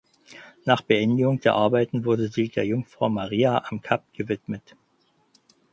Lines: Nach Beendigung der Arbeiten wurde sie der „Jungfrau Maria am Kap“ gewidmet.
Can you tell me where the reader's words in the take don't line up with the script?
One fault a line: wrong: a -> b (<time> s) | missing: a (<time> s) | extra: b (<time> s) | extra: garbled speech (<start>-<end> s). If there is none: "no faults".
no faults